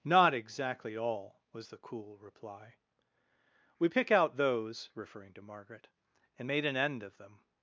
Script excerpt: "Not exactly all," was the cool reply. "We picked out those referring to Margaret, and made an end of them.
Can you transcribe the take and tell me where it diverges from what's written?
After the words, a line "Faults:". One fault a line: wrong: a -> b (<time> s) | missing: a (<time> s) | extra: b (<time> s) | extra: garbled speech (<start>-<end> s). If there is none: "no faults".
"Not exactly all," was the cool reply. "We pick out those referring to Margaret, and made an end of them.
Faults:
wrong: picked -> pick (3.9 s)